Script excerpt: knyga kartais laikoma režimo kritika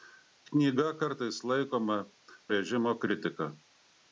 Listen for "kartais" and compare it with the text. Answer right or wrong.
right